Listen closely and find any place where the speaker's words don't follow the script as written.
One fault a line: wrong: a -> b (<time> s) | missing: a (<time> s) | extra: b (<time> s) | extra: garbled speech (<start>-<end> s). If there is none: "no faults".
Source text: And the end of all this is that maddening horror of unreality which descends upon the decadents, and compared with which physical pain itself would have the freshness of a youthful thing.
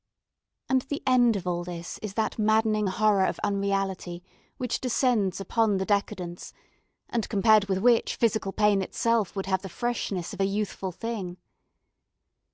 no faults